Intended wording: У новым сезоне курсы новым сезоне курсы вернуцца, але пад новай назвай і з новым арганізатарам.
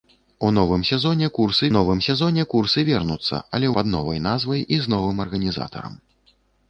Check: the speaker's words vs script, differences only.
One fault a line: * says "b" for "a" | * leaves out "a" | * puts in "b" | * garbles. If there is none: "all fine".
all fine